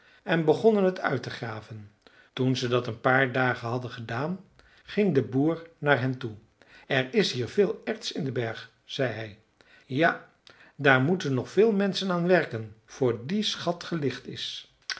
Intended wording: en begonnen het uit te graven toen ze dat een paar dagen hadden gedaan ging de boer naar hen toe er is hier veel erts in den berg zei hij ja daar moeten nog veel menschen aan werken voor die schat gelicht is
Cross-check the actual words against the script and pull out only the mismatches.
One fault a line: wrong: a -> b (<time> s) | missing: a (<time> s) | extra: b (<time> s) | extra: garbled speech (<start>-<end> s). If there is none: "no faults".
no faults